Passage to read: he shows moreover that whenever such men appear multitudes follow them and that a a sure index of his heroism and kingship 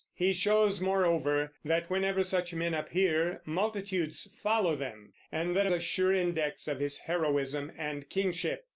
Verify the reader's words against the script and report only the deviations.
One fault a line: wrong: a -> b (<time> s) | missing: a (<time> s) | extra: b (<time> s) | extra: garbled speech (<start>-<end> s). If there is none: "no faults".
no faults